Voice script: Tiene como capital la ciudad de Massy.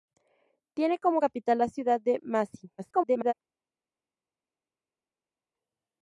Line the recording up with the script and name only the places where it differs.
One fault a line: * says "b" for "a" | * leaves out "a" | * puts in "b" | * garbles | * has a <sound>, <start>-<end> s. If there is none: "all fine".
* garbles